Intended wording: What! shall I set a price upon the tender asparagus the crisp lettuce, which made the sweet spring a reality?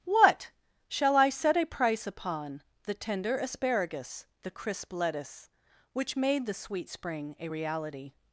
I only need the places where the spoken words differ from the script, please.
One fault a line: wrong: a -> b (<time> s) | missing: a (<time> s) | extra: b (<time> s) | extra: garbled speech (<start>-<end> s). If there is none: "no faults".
no faults